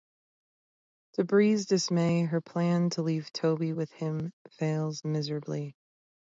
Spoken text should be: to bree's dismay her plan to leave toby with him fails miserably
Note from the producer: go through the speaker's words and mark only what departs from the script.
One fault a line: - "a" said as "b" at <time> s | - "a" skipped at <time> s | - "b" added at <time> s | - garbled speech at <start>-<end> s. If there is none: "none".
none